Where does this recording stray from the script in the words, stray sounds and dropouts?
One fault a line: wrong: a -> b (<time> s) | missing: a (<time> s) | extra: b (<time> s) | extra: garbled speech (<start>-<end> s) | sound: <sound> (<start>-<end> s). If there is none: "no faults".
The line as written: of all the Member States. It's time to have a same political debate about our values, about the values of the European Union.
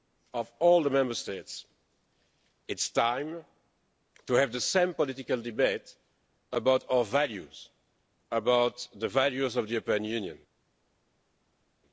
wrong: a -> the (4.5 s)